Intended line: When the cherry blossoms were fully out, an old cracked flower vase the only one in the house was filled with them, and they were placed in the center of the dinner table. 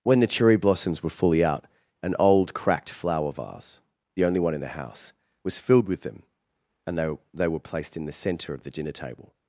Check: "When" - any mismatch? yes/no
no